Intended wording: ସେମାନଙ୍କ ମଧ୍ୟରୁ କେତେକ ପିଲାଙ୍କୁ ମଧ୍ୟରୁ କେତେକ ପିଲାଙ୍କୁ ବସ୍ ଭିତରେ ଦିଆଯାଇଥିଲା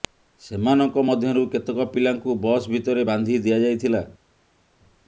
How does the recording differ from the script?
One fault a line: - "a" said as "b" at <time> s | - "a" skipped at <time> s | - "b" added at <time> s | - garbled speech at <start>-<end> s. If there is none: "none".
- "ମଧ୍ୟରୁ କେତେକ ପିଲାଙ୍କୁ" skipped at 2.4 s
- "ବାନ୍ଧି" added at 3.1 s